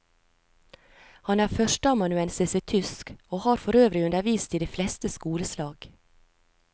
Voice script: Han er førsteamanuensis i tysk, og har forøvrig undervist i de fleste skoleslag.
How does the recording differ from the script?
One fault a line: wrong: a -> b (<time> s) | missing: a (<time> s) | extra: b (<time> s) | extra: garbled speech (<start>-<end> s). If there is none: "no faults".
no faults